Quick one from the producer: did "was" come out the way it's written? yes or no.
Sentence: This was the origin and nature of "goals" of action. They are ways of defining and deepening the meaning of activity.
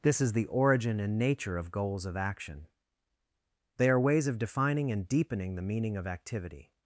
no